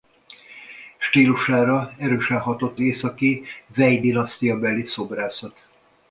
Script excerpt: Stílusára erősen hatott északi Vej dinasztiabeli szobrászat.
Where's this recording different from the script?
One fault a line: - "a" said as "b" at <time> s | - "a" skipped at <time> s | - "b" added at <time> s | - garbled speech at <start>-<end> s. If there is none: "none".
none